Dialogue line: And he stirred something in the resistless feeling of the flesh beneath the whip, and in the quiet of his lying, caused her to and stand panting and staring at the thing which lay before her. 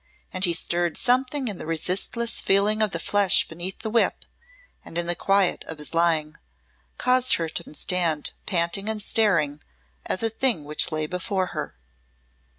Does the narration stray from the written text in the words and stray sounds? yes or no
no